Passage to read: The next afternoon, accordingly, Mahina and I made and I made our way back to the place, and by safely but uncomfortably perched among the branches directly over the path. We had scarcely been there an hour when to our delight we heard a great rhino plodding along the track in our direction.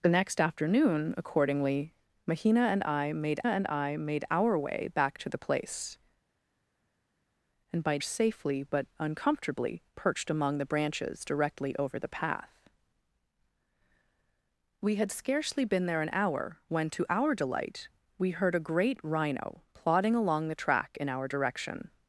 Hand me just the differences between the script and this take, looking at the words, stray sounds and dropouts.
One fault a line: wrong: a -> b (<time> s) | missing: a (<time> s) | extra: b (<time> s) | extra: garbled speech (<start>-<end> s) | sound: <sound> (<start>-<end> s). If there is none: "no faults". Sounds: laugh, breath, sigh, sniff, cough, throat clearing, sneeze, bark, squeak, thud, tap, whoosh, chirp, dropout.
no faults